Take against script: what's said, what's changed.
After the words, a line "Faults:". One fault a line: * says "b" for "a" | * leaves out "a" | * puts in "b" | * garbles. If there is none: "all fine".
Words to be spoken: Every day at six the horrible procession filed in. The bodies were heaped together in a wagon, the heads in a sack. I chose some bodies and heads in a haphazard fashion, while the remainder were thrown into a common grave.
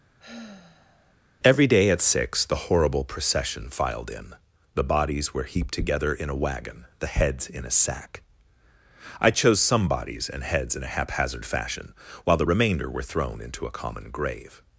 Every day at six the horrible procession filed in. The bodies were heaped together in a wagon, the heads in a sack. I chose some bodies and heads in a haphazard fashion, while the remainder were thrown into a common grave.
Faults:
all fine